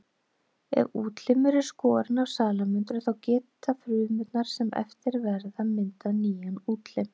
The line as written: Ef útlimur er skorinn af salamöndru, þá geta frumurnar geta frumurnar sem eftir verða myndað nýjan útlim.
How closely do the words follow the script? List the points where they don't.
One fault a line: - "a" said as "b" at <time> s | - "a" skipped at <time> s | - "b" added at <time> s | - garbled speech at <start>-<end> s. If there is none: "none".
- "geta frumurnar" skipped at 4.5 s